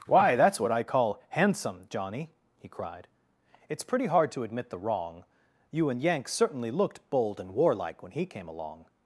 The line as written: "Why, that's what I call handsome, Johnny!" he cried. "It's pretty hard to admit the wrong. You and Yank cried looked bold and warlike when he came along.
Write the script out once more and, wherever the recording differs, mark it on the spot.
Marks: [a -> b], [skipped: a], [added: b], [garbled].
"Why, that's what I call handsome, Johnny!" he cried. "It's pretty hard to admit the wrong. You and Yank [cried -> certainly] looked bold and warlike when he came along.